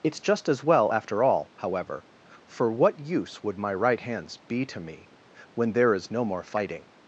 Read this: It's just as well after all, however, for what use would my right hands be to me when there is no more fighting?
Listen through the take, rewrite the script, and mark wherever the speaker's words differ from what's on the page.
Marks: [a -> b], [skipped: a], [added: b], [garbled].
It's just as well after all, however, for what use would my right hands be to me when there is no more fighting?